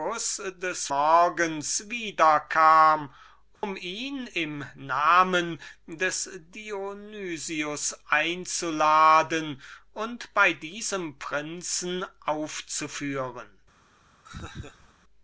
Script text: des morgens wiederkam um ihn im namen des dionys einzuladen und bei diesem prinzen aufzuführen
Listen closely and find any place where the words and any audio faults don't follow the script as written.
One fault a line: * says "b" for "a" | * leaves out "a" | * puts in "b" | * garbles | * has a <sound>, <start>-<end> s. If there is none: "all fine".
* has a dropout, 3.6-3.6 s
* has a laugh, 14.3-14.9 s